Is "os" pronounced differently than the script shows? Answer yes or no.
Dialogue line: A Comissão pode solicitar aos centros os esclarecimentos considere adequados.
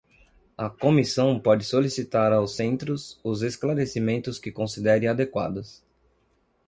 no